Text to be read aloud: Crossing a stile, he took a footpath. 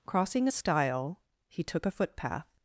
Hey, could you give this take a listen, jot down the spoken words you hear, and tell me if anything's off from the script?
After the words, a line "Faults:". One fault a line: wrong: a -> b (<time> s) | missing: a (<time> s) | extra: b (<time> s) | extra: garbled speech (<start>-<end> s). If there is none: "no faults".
Crossing a stile, he took a footpath.
Faults:
no faults